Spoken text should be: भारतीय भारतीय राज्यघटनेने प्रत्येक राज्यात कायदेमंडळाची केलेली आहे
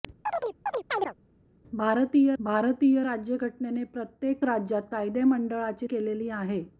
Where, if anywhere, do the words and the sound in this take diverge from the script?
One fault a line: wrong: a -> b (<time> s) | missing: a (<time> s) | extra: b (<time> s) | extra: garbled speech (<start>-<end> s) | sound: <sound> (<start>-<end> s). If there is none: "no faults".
sound: chirp (0.3-1.1 s)